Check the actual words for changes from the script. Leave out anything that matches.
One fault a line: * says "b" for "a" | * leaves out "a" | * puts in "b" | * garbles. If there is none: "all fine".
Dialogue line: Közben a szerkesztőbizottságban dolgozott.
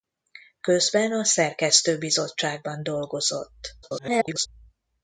* garbles